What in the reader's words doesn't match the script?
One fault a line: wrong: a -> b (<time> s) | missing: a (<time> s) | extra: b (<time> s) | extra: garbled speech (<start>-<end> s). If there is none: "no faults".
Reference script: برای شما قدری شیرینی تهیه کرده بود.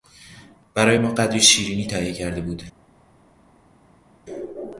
wrong: شما -> ما (1.0 s)